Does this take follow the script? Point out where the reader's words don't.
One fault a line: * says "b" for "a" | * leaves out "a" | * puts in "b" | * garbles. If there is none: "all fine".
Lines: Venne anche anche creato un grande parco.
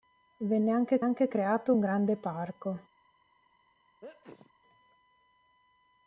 all fine